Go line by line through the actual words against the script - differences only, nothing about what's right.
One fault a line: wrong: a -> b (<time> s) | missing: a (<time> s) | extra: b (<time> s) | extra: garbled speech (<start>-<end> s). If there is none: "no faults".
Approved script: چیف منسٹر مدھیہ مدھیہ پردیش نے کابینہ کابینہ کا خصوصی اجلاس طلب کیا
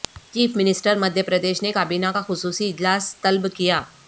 missing: مدھیہ (1.2 s)
missing: کابینہ (2.1 s)